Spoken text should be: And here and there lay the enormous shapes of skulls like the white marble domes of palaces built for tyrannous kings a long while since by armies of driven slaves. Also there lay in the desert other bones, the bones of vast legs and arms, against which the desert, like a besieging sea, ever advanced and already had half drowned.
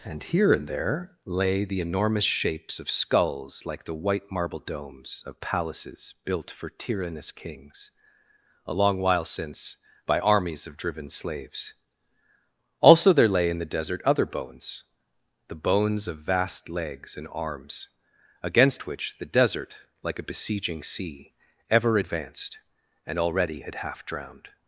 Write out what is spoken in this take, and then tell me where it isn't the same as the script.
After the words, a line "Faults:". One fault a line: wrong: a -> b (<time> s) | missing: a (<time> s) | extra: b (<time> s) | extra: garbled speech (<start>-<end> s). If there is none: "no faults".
And here and there lay the enormous shapes of skulls like the white marble domes of palaces built for tyrannous kings a long while since by armies of driven slaves. Also there lay in the desert other bones, the bones of vast legs and arms, against which the desert, like a besieging sea, ever advanced and already had half drowned.
Faults:
no faults